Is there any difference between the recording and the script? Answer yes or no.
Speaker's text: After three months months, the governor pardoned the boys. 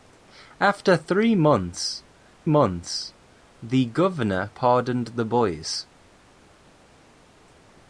no